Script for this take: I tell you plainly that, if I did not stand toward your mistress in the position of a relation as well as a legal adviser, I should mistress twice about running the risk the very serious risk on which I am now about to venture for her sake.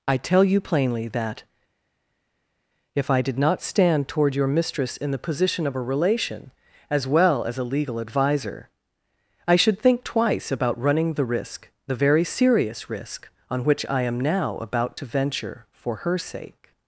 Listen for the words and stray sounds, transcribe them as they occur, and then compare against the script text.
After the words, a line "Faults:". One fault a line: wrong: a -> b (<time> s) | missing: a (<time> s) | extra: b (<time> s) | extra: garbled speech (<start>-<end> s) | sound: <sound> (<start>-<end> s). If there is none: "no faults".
I tell you plainly that, if I did not stand toward your mistress in the position of a relation as well as a legal adviser, I should think twice about running the risk the very serious risk on which I am now about to venture for her sake.
Faults:
wrong: mistress -> think (9.8 s)